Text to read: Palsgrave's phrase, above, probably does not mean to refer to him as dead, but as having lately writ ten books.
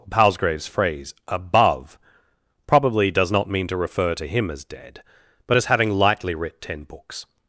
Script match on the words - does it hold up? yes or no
no